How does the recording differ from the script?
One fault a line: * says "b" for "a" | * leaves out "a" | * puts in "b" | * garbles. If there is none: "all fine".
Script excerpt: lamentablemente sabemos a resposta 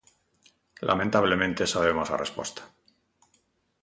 all fine